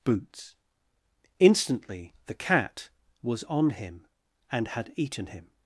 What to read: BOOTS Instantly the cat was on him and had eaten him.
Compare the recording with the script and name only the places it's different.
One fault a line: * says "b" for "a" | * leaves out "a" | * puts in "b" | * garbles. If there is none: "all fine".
all fine